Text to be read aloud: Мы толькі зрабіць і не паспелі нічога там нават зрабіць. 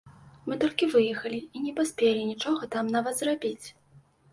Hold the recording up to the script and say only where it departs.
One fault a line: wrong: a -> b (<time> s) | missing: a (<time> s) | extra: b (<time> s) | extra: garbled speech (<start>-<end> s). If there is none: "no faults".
wrong: зрабіць -> выехалі (0.9 s)